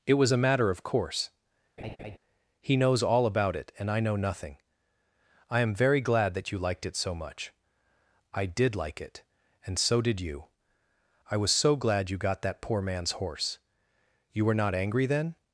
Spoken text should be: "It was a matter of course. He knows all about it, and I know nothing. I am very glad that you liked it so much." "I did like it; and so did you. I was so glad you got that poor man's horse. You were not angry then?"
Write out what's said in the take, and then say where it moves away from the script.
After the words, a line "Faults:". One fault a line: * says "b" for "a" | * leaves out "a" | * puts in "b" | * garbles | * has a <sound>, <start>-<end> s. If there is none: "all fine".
"It was a matter of course. He knows all about it, and I know nothing. I am very glad that you liked it so much." "I did like it; and so did you. I was so glad you got that poor man's horse. You were not angry then?"
Faults:
* has a laugh, 1.8-2.2 s